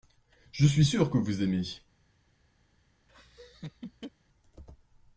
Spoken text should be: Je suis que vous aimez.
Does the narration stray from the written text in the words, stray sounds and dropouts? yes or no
yes